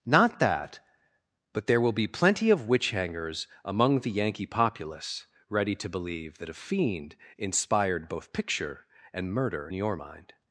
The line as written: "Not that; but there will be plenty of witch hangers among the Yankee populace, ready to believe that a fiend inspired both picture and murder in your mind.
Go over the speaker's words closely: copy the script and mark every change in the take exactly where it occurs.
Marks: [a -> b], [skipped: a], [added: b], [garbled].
"Not that; but there will be plenty of witch hangers among the Yankee populace, ready to believe that a fiend inspired both picture and murder [skipped: in] your mind.